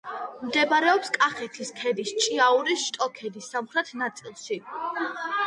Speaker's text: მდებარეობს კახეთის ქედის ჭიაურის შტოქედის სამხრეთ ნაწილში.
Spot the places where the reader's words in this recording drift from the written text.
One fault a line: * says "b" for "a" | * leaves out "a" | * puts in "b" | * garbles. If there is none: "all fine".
all fine